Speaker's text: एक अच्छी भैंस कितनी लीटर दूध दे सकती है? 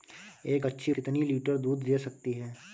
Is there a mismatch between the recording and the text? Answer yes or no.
yes